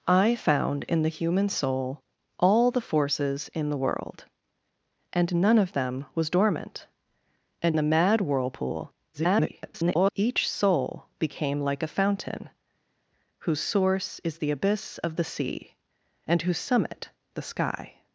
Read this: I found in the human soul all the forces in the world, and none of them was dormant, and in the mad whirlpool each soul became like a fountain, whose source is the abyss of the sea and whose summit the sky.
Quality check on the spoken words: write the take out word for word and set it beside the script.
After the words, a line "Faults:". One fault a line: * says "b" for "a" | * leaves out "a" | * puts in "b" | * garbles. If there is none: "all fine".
I found in the human soul all the forces in the world, and none of them was dormant, and the mad whirlpool [garbled] each soul became like a fountain, whose source is the abyss of the sea and whose summit the sky.
Faults:
* leaves out "in"
* garbles